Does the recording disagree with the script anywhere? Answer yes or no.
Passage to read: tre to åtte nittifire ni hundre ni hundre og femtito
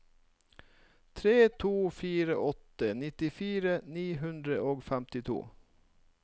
yes